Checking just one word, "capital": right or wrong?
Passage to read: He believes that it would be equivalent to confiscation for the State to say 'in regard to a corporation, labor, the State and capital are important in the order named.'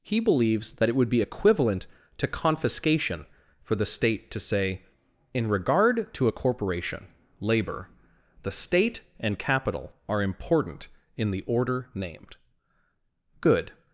right